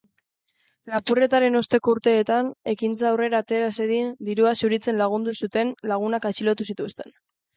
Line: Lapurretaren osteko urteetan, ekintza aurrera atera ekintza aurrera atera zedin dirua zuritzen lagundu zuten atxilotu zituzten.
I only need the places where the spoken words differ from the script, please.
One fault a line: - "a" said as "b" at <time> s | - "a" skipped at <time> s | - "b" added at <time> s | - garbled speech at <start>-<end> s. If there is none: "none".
- "ekintza aurrera atera" skipped at 3.7 s
- "lagunak" added at 5.9 s